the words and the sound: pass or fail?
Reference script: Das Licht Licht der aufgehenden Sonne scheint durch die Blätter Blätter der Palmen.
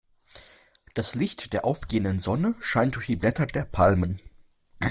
fail